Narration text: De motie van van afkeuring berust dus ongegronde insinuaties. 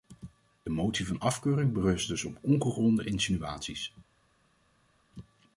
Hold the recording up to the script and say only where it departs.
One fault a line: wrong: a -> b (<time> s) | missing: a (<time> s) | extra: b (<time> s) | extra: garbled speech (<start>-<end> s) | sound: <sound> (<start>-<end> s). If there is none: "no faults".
missing: van (1.2 s)
extra: op (2.2 s)